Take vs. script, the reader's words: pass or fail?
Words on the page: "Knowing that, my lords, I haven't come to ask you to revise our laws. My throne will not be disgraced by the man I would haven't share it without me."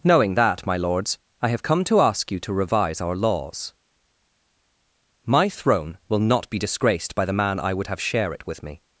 fail